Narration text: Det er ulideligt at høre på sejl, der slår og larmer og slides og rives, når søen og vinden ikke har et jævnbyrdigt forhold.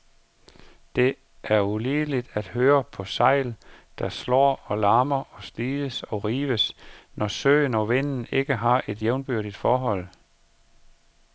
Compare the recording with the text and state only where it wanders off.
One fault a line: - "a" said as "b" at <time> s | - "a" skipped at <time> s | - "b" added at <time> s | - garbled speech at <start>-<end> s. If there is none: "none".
none